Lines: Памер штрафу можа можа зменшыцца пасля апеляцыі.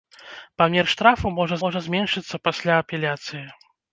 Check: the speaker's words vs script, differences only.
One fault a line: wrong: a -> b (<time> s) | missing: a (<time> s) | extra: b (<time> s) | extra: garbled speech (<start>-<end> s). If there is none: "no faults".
no faults